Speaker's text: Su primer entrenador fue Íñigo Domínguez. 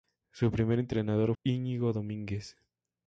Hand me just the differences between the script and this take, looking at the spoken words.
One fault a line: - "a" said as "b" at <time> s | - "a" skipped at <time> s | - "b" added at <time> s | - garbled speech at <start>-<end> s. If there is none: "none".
- "fue" skipped at 1.4 s